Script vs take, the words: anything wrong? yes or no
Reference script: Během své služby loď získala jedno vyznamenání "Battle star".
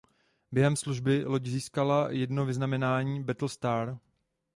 yes